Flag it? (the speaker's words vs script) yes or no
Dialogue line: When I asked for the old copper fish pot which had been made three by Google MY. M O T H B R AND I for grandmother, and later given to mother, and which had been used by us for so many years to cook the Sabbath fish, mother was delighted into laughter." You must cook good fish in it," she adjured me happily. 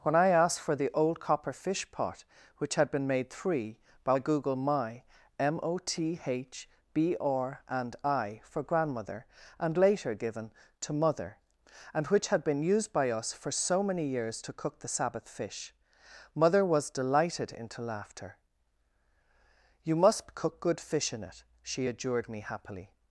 no